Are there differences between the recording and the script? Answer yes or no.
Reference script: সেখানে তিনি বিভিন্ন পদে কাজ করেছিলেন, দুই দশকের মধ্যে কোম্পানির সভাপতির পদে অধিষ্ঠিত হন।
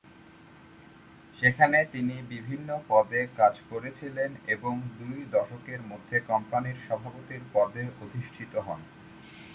yes